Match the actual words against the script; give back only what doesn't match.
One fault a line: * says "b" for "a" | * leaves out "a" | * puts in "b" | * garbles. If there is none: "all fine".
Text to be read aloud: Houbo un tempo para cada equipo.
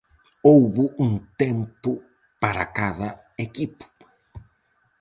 all fine